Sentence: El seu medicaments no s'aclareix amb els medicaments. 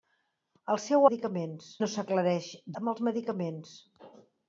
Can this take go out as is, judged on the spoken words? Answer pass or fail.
pass